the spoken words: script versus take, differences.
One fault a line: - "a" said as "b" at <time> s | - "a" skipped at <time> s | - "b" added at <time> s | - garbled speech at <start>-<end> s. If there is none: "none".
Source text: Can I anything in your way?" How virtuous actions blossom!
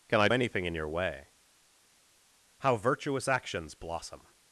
none